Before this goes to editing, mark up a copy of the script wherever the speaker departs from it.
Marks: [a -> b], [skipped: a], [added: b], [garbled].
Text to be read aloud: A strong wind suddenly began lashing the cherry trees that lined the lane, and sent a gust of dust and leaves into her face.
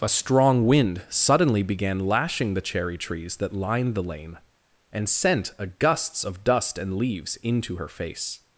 A strong wind suddenly began lashing the cherry trees that lined the lane, and sent a [gust -> gusts] of dust and leaves into her face.